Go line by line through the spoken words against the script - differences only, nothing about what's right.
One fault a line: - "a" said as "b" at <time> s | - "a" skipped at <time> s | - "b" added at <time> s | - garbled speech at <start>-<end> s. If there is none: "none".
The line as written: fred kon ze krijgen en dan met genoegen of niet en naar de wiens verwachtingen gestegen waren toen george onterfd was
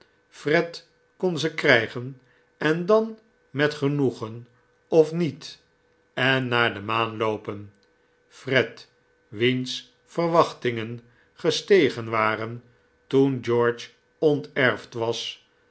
- "maan loopen fred" added at 6.8 s